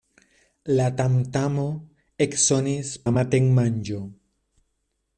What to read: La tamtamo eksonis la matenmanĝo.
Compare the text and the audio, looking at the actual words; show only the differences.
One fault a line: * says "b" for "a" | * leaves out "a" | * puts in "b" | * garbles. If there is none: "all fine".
all fine